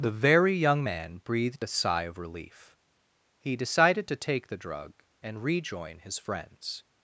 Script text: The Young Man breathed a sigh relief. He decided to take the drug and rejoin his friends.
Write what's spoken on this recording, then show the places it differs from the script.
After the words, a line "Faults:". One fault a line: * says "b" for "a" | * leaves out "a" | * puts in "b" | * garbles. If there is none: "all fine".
The Very Young Man breathed a sigh of relief. He decided to take the drug and rejoin his friends.
Faults:
* puts in "Very"
* puts in "of"